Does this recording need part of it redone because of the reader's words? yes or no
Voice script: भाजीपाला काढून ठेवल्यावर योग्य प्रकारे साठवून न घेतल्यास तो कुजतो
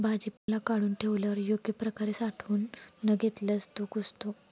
no